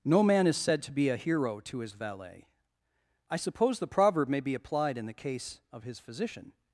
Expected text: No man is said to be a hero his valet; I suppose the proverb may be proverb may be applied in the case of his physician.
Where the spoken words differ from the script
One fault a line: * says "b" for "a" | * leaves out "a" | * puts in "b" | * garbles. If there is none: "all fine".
* puts in "to"
* leaves out "proverb may be"